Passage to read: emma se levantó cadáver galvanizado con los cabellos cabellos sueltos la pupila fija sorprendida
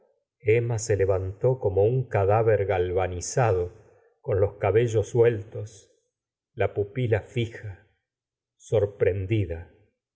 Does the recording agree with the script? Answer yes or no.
no